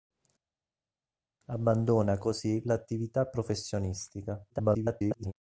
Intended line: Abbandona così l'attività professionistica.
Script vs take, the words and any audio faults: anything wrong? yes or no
yes